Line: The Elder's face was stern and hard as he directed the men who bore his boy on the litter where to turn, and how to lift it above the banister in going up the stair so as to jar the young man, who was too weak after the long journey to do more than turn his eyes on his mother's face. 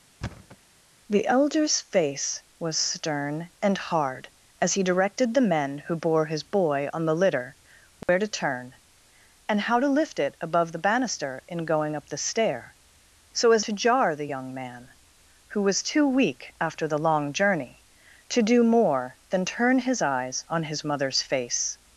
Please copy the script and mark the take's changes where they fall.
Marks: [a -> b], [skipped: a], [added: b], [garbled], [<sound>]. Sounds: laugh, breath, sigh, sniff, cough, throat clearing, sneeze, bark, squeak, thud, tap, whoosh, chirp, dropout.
[thud] The Elder's face was stern and hard as he directed the men who bore his boy on the litter where [dropout] to turn, and how to lift it above the banister in going up the stair so as to jar the young man, who was too weak after the long journey to do more than turn his eyes on his mother's face.